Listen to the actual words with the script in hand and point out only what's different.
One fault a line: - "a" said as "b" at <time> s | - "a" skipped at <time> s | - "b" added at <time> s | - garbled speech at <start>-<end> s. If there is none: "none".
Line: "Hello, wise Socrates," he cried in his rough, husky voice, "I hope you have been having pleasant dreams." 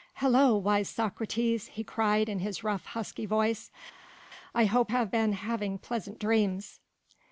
- "you" skipped at 4.9 s